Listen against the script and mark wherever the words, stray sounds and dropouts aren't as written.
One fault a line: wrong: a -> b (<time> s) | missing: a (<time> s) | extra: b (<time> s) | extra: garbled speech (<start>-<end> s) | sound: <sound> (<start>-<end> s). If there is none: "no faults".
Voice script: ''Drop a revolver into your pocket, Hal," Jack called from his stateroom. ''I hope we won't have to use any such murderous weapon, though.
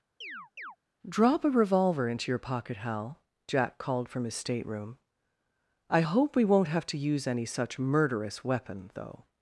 sound: chirp (0.2-0.8 s)